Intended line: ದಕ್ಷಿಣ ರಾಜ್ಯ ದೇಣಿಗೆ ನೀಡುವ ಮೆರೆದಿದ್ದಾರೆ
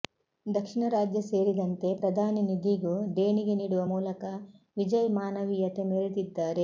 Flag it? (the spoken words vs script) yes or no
yes